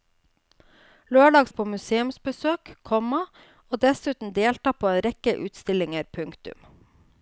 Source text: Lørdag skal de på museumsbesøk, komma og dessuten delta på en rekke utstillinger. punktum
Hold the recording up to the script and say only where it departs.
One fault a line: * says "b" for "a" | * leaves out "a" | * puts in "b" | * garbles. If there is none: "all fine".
* leaves out "skal"